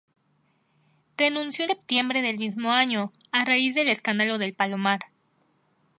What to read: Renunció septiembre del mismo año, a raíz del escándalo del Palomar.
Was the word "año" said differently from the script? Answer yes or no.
no